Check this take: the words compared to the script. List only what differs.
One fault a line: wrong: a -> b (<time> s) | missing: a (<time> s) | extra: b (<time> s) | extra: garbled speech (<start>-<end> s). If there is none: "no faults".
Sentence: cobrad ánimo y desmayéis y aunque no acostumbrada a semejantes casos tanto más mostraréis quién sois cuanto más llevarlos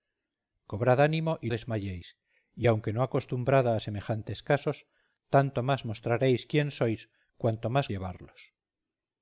no faults